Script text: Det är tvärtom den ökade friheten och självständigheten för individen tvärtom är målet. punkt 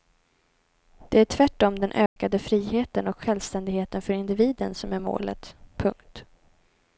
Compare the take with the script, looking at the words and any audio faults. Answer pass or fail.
fail